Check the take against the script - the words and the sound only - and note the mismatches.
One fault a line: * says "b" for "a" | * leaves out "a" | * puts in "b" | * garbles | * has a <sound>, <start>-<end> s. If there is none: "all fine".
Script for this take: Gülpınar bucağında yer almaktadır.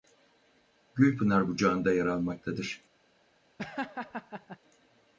* has a laugh, 3.6-4.6 s